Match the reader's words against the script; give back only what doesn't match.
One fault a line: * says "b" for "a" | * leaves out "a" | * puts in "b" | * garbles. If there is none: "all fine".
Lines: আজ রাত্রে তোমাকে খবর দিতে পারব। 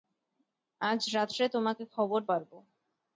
* leaves out "দিতে"